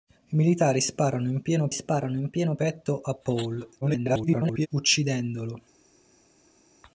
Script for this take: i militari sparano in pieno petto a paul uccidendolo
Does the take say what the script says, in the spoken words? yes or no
no